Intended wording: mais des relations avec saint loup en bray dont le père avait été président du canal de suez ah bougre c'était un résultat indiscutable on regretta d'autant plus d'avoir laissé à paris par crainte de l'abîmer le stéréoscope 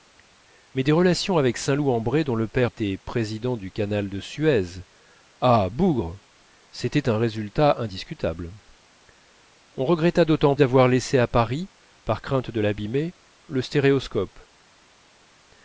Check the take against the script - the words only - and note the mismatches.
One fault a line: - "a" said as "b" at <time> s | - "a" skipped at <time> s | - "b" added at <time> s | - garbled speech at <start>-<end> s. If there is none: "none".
- "avait" skipped at 2.7 s
- "plus" skipped at 10.5 s